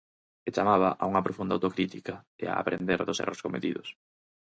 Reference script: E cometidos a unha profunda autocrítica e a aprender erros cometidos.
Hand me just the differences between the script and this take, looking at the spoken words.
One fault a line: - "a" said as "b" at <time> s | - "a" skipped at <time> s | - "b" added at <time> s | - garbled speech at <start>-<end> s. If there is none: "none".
- "cometidos" said as "chamaba" at 0.6 s
- "dos" added at 3.0 s